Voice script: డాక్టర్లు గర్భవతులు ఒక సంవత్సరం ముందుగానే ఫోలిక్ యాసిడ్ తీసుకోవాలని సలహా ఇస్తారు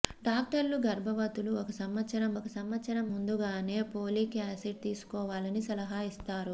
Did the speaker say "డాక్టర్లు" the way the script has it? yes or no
yes